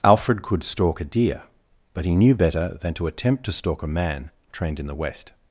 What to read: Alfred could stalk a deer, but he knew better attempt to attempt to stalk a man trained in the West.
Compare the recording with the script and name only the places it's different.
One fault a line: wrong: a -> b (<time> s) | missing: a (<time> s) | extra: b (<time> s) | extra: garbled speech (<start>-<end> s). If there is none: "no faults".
wrong: attempt -> than (2.8 s)